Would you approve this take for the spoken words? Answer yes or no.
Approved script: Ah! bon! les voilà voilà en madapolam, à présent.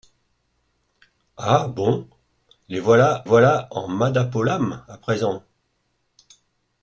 yes